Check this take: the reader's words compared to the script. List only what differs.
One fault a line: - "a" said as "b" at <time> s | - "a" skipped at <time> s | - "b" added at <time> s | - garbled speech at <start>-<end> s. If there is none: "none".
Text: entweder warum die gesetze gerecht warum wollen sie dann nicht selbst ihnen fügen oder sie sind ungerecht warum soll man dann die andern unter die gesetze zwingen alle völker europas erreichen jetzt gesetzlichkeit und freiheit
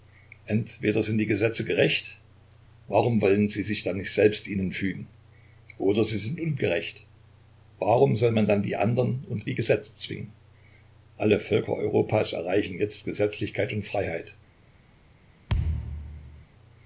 - "warum" said as "sind" at 1.0 s
- "sich" added at 3.6 s